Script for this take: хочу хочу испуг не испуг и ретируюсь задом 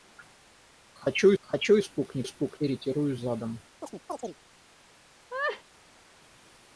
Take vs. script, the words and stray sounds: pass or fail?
fail